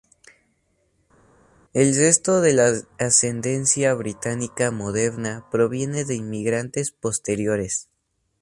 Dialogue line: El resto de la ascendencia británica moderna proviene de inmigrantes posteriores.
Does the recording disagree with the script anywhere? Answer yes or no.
no